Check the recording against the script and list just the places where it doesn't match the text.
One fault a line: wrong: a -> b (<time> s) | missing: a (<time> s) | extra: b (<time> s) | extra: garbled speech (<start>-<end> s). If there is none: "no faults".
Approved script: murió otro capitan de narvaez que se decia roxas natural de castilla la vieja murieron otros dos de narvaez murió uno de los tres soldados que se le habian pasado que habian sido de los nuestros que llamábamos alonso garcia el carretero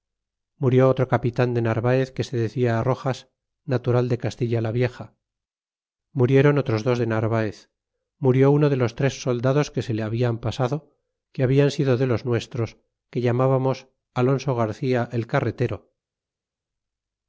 no faults